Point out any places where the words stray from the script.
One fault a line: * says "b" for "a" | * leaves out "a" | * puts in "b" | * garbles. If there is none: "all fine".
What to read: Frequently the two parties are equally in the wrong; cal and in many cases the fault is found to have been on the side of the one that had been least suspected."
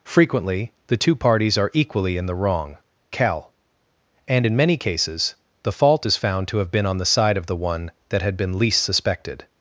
all fine